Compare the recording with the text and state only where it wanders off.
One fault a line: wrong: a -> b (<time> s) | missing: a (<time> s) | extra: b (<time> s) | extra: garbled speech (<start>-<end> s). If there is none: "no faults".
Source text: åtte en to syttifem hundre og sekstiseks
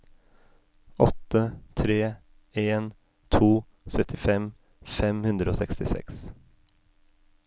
extra: tre (1.7 s)
extra: fem (5.0 s)